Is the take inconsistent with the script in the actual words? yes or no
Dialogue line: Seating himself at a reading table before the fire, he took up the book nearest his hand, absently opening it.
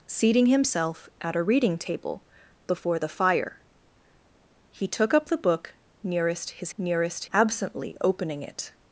yes